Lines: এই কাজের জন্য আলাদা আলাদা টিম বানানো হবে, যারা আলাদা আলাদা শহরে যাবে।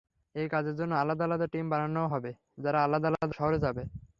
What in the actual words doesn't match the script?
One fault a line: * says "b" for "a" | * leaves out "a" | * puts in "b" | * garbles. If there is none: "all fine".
all fine